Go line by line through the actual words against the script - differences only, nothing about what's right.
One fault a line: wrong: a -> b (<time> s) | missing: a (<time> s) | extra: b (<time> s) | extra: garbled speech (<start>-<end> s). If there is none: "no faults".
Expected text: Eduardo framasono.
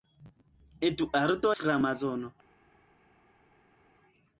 no faults